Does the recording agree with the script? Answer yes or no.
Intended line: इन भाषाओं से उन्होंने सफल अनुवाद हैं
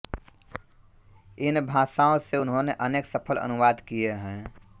no